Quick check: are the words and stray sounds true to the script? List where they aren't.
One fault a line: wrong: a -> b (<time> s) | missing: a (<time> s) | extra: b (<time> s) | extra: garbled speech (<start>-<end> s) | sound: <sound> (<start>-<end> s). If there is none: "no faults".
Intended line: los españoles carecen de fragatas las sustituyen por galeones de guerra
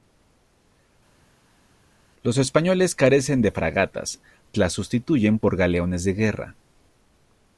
no faults